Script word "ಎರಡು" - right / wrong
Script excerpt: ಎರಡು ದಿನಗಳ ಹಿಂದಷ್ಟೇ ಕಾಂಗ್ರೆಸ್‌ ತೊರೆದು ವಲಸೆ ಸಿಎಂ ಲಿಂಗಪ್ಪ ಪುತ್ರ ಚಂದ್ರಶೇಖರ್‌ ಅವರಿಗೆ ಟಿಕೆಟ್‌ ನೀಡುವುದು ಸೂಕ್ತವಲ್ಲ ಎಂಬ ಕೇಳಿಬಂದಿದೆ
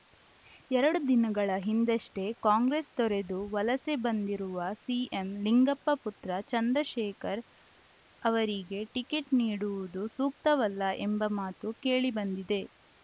right